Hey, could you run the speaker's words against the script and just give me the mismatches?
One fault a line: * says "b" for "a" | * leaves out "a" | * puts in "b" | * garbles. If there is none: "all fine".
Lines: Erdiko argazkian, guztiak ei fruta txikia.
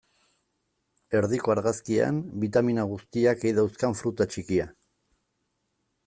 * puts in "bitamina"
* puts in "dauzkan"